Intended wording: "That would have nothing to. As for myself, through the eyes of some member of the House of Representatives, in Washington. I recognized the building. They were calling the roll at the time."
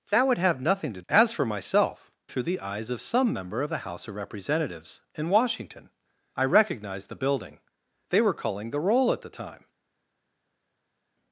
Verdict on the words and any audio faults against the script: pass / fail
pass